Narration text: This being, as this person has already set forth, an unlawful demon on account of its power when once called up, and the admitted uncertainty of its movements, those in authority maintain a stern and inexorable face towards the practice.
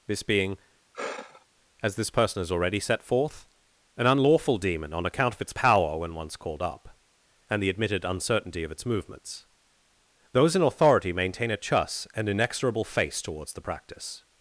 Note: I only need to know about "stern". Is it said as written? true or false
false